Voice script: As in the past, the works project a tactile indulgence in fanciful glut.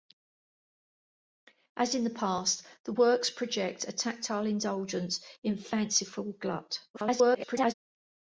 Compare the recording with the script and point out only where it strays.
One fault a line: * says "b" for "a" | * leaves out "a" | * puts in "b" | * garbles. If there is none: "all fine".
* garbles